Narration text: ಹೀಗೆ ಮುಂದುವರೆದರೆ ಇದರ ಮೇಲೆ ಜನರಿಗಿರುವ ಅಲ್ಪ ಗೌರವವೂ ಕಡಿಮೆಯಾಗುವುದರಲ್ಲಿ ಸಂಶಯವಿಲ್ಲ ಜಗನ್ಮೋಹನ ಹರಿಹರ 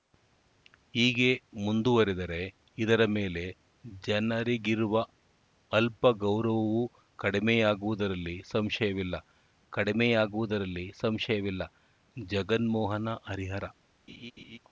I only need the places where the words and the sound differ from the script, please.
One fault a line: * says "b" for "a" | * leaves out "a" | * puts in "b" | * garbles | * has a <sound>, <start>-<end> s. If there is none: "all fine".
* puts in "ಕಡಿಮೆಯಾಗುವುದರಲ್ಲಿ ಸಂಶಯವಿಲ್ಲ"
* has a laugh, 14.1-14.6 s